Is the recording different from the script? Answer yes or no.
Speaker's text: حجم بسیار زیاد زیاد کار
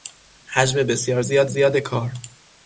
no